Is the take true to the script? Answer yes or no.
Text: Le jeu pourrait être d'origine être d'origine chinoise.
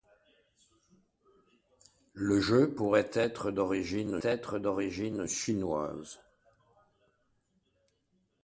yes